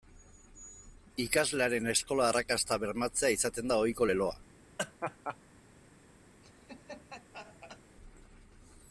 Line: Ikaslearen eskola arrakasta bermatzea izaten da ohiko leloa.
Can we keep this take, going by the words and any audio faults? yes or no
no